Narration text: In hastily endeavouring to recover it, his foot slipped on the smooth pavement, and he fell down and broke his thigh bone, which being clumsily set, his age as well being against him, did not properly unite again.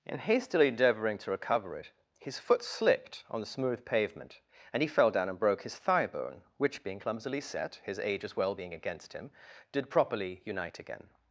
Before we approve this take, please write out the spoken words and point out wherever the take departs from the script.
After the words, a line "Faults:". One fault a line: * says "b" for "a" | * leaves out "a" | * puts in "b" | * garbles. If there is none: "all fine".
In hastily endeavouring to recover it, his foot slipped on the smooth pavement, and he fell down and broke his thigh bone, which being clumsily set, his age as well being against him, did properly unite again.
Faults:
* leaves out "not"